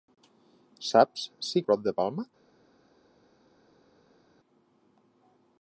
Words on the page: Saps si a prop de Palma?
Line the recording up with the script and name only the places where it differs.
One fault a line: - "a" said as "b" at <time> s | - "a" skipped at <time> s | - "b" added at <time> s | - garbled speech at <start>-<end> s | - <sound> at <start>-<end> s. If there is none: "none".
none